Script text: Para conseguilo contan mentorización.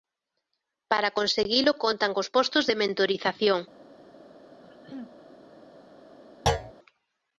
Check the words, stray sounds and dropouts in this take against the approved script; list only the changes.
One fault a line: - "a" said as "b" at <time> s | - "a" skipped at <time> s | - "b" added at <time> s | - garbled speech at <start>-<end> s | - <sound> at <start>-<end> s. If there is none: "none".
- "cos postos de" added at 2.1 s
- throat clearing at 4.6-5.2 s
- thud at 6.5-6.7 s